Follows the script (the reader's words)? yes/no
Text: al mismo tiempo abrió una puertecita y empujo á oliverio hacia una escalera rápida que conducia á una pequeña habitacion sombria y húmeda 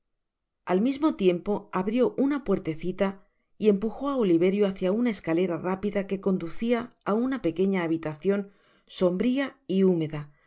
yes